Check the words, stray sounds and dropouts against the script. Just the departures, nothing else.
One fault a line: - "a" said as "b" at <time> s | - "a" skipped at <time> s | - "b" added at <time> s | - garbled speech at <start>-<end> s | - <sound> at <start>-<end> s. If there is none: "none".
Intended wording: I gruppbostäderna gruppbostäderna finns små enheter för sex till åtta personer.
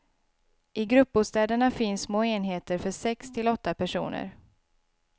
- "gruppbostäderna" skipped at 1.7 s